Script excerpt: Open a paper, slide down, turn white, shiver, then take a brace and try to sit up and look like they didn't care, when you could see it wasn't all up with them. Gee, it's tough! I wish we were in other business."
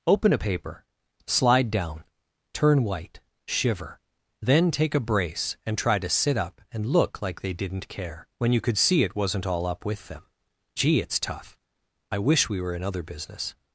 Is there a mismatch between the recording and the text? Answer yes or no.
no